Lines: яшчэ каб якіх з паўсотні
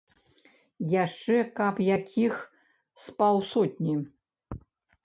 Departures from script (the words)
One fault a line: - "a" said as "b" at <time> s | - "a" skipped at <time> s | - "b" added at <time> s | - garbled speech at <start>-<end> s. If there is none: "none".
none